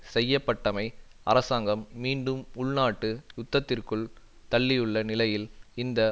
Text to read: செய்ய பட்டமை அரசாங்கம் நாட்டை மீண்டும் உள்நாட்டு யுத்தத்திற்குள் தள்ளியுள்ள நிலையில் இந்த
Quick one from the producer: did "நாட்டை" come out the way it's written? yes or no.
no